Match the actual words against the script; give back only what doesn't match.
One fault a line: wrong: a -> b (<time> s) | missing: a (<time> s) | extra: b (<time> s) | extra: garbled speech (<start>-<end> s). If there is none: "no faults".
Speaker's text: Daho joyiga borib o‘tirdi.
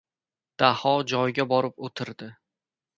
no faults